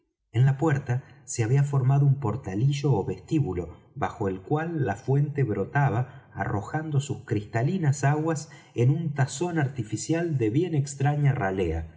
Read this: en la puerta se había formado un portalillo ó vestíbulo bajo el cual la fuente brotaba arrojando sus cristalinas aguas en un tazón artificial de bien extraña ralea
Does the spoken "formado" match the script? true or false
true